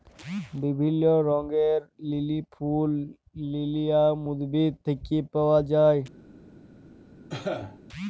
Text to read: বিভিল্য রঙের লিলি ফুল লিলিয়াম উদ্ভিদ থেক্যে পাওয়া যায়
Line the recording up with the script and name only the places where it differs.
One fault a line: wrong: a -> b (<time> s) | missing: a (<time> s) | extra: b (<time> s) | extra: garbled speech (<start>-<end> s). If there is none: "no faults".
no faults